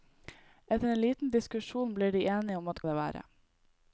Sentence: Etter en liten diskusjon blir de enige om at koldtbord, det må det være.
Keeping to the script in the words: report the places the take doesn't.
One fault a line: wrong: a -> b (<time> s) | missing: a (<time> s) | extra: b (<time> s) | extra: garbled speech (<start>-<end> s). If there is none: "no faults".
missing: koldtbord det må (2.8 s)